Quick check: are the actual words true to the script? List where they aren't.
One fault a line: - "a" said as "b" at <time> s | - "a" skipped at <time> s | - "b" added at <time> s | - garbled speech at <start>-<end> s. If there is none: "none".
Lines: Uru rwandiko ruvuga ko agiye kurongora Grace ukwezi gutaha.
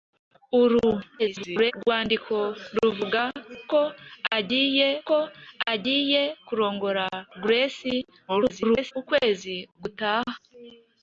- garbled speech at 1.2-1.7 s
- "ko agiye" added at 5.1 s
- garbled speech at 8.3-8.9 s